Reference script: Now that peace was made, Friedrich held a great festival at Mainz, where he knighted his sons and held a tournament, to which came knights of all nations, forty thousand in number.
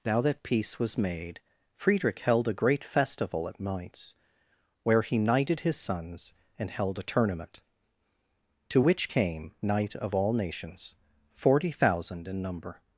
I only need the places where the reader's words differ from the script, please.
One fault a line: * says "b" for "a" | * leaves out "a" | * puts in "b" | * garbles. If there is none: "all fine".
* says "knight" for "knights"